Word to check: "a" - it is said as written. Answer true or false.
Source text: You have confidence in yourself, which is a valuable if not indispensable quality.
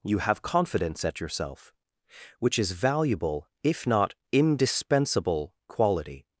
false